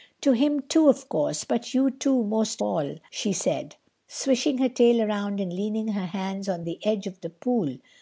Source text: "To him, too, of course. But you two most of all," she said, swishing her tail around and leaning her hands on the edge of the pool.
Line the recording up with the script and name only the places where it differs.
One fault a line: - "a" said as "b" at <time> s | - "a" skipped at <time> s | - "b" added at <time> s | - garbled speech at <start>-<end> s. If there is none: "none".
- "of" skipped at 2.6 s